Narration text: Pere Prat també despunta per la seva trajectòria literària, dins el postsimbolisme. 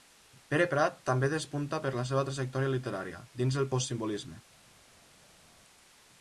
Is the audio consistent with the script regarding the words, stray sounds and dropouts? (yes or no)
yes